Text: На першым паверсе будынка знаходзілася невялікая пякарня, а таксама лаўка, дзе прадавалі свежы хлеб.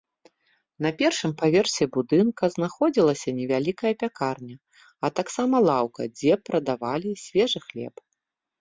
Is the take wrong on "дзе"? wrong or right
right